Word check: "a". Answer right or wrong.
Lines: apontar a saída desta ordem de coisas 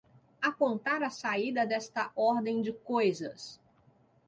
right